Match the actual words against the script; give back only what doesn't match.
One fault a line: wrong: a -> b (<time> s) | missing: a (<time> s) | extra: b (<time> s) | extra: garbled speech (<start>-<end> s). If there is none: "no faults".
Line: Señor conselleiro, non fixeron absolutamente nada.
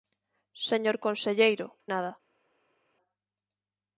missing: non fixeron absolutamente (1.7 s)